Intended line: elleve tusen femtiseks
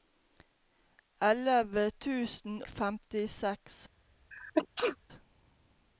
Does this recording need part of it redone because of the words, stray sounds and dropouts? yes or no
yes